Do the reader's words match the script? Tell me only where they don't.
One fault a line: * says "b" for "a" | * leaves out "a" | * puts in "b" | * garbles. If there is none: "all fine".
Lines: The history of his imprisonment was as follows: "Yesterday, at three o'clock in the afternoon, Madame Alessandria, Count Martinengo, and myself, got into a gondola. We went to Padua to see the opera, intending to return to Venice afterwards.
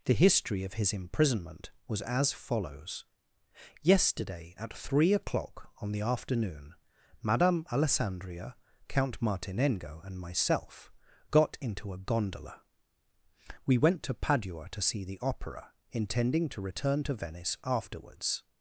* says "on" for "in"